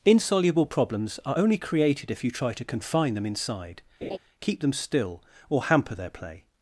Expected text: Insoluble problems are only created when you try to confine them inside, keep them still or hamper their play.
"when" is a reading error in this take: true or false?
true